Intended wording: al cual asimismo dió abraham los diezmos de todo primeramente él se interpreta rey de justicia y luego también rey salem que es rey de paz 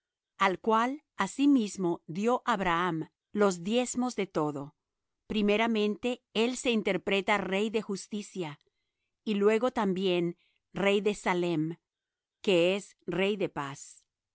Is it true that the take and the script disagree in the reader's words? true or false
true